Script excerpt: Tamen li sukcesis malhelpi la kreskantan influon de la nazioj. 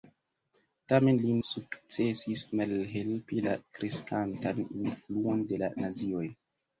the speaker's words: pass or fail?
pass